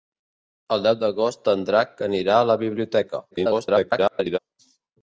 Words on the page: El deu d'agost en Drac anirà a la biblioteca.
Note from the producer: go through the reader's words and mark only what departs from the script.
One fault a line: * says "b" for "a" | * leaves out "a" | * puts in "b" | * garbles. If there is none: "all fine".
* garbles